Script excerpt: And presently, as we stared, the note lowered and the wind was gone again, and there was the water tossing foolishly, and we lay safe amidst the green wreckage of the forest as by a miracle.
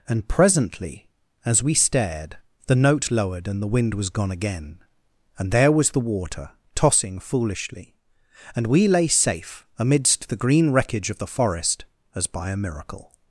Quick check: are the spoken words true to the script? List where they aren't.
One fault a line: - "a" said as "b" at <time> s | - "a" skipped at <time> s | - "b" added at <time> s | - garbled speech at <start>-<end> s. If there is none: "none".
none